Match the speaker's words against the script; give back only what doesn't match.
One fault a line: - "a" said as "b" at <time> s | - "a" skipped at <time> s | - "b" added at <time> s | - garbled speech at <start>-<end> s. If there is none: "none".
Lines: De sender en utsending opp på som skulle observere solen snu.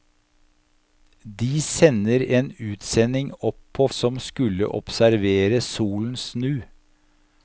none